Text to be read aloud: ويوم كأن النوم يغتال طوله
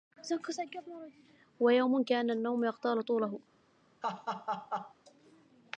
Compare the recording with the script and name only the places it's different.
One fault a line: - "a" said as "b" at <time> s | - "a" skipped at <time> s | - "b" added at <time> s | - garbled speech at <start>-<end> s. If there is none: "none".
none